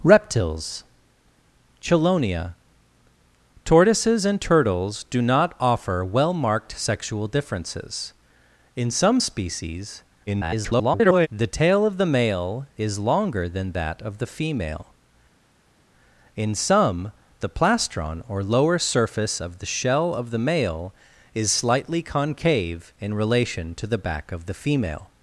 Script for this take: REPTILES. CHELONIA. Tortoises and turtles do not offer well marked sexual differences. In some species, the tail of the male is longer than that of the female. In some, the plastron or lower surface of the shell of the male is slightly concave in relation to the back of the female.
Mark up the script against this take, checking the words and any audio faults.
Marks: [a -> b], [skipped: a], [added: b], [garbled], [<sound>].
REPTILES. CHELONIA. Tortoises and turtles do not offer well marked sexual differences. In some species, [garbled] the tail of the male is longer than that of the female. In some, the plastron or lower surface of the shell of the male is slightly concave in relation to the back of the female.